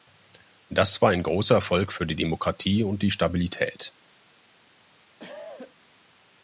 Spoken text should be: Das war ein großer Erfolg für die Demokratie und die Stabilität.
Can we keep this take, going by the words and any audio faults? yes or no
no